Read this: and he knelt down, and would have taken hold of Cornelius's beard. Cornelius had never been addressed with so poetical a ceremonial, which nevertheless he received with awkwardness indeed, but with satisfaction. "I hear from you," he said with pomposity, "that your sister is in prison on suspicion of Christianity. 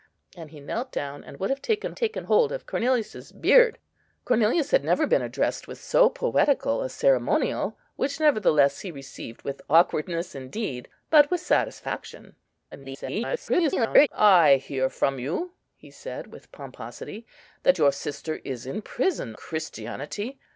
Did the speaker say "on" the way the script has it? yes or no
no